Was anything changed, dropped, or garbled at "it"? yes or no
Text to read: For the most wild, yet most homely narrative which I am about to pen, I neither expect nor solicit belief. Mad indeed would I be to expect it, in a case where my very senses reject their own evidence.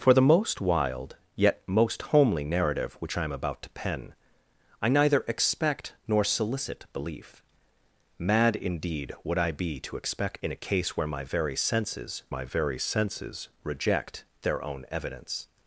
yes